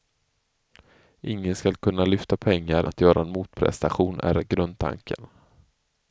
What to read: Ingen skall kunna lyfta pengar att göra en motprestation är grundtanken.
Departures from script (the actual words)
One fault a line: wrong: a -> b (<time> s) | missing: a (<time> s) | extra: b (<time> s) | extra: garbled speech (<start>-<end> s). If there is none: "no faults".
no faults